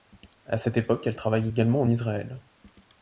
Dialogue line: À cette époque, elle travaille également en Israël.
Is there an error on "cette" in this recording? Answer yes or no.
no